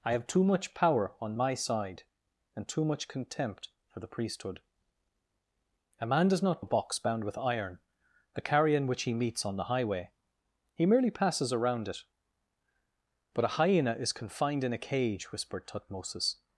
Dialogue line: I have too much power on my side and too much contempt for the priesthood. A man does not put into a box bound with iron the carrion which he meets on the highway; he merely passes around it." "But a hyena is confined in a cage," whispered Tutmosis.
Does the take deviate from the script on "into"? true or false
true